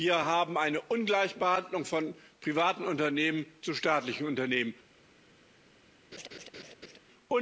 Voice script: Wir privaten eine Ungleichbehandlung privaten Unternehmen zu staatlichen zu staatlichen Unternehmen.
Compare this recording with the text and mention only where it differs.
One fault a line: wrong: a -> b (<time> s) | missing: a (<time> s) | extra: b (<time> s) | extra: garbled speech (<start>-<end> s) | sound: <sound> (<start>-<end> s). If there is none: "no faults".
wrong: privaten -> haben (0.2 s)
extra: von (1.8 s)
missing: zu staatlichen (4.3 s)
sound: laugh (6.1-7.0 s)